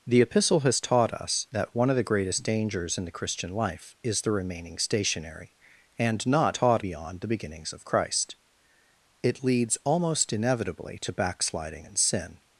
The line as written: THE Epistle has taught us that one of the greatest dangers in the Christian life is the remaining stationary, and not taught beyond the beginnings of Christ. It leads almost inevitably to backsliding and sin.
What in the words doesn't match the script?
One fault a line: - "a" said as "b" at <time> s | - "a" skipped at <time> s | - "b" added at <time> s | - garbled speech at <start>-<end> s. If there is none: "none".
none